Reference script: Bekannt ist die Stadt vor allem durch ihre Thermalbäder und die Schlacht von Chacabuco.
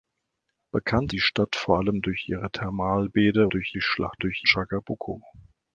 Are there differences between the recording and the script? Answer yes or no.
yes